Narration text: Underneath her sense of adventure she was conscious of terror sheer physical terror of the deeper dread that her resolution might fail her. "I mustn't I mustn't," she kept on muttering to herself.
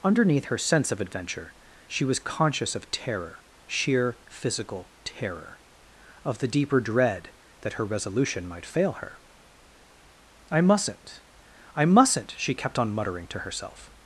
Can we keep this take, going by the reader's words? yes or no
yes